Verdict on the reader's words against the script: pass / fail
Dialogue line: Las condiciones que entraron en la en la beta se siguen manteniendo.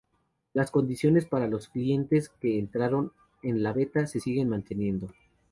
fail